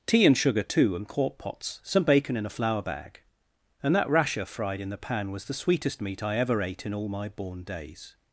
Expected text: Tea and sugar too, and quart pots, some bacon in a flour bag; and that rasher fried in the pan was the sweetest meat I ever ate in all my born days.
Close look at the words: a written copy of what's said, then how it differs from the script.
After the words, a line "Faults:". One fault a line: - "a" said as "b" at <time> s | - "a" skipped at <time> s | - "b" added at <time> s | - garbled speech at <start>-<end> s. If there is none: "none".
Tea and sugar too, and quart pots, some bacon in a flour bag; and that rasher fried in the pan was the sweetest meat I ever ate in all my born days.
Faults:
none